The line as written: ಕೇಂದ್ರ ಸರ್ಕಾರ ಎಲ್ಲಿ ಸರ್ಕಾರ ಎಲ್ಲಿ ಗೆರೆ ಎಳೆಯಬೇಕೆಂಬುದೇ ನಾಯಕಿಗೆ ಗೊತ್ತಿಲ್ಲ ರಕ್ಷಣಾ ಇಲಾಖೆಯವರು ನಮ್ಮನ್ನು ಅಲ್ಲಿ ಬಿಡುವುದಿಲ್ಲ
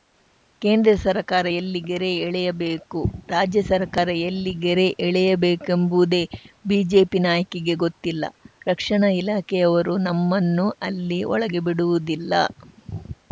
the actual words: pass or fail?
fail